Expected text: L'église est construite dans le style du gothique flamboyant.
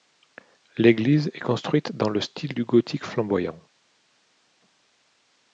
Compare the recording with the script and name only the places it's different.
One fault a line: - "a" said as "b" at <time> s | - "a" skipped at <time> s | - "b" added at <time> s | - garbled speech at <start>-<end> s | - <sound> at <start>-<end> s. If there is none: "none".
none